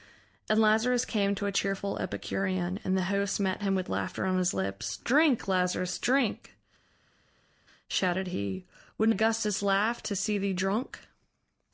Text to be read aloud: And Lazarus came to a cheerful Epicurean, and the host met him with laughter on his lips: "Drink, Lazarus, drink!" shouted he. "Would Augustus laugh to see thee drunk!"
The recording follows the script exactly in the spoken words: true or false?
true